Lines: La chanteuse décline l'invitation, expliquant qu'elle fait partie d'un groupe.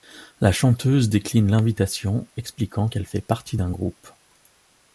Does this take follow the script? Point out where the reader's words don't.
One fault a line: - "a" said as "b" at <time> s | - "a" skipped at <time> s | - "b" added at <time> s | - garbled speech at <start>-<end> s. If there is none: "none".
none